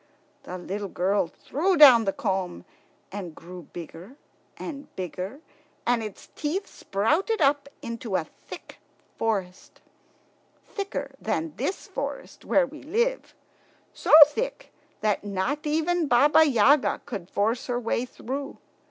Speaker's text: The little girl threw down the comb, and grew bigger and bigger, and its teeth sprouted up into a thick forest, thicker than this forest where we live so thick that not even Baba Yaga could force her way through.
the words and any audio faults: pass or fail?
pass